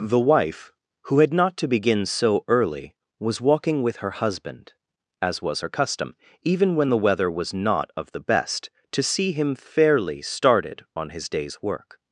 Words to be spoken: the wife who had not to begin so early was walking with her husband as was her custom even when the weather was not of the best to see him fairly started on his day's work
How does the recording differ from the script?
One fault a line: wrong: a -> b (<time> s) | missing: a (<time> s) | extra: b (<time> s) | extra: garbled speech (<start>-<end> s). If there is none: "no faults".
no faults